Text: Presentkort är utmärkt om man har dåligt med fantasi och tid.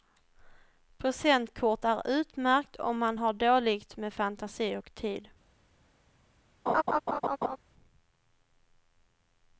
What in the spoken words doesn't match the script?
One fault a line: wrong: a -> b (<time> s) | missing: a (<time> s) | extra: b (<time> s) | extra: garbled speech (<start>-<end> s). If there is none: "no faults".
no faults